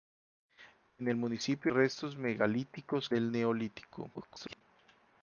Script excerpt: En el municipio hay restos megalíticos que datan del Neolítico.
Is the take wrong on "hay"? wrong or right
wrong